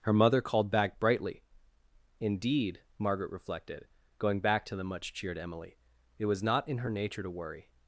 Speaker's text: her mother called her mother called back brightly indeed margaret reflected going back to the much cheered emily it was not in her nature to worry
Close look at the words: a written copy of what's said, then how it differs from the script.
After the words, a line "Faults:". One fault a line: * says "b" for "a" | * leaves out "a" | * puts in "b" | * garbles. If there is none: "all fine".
her mother called back brightly indeed margaret reflected going back to the much cheered emily it was not in her nature to worry
Faults:
* leaves out "her mother called"